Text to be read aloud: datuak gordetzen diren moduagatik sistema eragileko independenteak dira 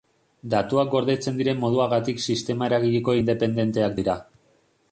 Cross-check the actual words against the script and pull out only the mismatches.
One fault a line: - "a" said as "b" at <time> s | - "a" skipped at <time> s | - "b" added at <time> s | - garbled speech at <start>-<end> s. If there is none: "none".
none